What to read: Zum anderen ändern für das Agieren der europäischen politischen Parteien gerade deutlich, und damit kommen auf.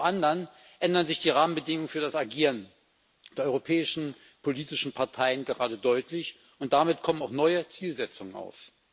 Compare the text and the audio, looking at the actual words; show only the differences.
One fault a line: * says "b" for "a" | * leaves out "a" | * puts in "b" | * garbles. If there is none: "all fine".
* puts in "sich die Rahmenbedingungen"
* puts in "auch neue Zielsetzungen"